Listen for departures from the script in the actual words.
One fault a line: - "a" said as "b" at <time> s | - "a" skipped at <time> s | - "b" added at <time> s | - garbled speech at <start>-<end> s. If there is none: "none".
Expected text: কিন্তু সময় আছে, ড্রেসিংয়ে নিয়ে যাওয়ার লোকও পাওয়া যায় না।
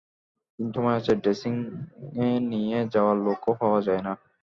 none